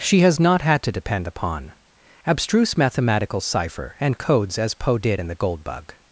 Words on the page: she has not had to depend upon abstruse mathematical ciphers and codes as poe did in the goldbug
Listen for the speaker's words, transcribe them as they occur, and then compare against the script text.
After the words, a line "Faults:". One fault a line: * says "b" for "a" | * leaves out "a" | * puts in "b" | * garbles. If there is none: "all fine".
she has not had to depend upon abstruse mathematical cipher and codes as poe did in the goldbug
Faults:
* says "cipher" for "ciphers"